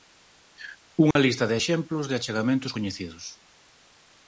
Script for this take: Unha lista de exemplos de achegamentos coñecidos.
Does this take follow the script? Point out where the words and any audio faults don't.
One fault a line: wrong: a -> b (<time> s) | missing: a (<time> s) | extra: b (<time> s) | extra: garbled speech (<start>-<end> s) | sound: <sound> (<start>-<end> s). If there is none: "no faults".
sound: dropout (1.1-1.2 s)